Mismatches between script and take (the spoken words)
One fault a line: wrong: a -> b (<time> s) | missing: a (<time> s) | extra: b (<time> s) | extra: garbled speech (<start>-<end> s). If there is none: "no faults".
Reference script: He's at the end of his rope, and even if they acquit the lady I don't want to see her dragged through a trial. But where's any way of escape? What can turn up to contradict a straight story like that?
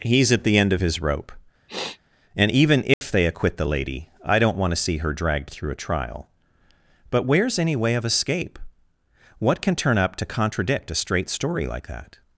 no faults